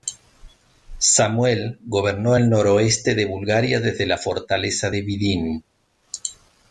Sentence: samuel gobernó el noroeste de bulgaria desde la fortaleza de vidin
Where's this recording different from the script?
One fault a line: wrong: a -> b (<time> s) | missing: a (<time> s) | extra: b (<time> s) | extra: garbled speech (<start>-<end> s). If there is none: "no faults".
no faults